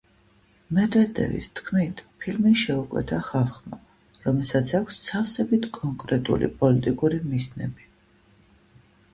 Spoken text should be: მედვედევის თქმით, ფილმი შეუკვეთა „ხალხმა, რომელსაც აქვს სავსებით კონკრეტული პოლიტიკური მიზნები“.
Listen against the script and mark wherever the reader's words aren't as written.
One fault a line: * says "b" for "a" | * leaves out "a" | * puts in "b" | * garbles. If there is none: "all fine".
all fine